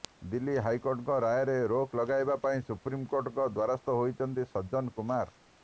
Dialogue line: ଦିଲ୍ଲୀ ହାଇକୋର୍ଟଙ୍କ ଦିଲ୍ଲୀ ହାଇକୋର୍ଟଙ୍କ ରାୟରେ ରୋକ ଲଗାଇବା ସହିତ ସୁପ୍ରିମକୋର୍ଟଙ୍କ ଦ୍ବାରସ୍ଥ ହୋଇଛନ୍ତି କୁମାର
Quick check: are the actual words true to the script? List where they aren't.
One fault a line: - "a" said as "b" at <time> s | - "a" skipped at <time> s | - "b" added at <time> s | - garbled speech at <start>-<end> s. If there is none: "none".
- "ଦିଲ୍ଲୀ ହାଇକୋର୍ଟଙ୍କ" skipped at 1.2 s
- "ସହିତ" said as "ପାଇଁ" at 2.4 s
- "ସଜ୍ଜନ" added at 4.5 s